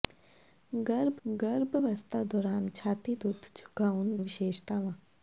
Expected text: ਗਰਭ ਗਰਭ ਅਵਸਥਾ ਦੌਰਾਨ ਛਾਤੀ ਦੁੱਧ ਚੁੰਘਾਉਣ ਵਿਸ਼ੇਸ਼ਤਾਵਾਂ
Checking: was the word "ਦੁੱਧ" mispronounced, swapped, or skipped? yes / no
no